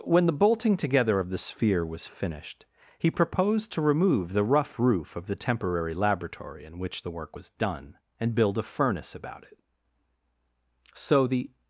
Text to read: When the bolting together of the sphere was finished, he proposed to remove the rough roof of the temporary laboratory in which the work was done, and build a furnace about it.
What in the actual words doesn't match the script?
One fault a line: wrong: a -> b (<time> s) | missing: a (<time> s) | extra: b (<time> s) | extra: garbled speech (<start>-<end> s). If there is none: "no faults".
extra: So the (10.9 s)